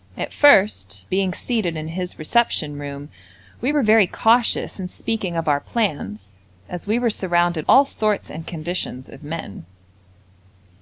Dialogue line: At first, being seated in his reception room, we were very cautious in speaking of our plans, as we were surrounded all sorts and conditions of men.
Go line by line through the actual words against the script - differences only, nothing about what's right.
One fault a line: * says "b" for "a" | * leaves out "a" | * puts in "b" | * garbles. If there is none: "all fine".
all fine